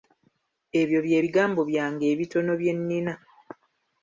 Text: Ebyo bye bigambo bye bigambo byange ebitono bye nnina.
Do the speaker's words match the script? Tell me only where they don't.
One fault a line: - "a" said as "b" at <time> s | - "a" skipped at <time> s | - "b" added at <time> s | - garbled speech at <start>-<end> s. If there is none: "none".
- "bye bigambo" skipped at 1.6 s